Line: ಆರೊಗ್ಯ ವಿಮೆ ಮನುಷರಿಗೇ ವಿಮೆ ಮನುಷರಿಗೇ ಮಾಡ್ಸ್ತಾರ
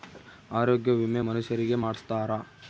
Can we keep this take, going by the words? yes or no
no